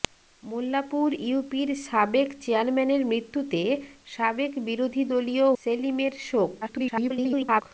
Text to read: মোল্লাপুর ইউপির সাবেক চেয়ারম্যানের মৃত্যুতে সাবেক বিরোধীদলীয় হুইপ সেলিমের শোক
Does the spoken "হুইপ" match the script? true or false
false